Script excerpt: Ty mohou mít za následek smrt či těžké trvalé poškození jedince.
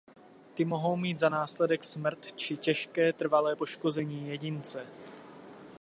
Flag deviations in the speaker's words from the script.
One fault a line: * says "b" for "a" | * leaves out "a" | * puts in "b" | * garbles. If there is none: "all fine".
all fine